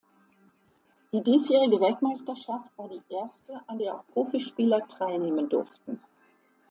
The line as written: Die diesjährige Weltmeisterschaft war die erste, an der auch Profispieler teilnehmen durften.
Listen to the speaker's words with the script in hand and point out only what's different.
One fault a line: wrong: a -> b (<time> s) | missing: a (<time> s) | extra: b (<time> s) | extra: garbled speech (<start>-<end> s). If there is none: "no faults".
no faults